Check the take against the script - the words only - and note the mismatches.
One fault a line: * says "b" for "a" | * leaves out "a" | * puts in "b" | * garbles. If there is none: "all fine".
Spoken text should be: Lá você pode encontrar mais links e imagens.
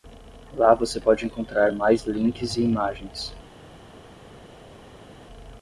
all fine